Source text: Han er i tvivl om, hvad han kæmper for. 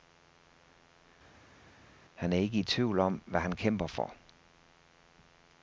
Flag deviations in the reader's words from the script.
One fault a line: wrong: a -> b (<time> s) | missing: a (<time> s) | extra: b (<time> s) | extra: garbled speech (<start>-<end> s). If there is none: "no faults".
extra: ikke (2.4 s)